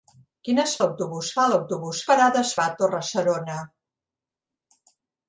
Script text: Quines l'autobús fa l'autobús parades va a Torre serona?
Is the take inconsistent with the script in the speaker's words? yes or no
no